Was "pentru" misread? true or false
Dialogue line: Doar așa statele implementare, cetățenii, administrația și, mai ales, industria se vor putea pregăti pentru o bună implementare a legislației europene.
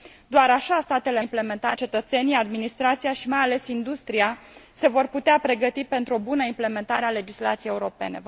false